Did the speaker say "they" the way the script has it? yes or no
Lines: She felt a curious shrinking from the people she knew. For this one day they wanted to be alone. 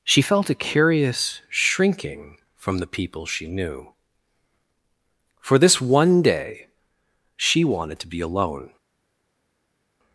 no